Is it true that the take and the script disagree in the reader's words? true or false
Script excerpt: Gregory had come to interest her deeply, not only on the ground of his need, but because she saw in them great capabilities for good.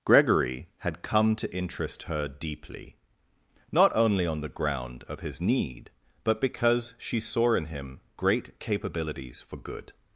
true